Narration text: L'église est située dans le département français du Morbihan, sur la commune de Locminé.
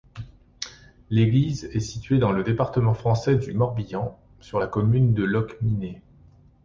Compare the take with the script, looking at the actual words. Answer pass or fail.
pass